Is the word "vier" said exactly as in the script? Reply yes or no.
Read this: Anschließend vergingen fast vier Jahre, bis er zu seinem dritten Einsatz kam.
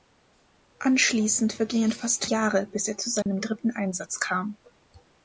no